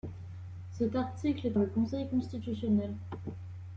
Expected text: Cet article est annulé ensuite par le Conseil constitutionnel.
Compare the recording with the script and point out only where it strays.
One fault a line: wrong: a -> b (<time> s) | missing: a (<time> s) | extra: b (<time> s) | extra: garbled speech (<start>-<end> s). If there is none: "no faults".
missing: annulé ensuite par (1.6 s)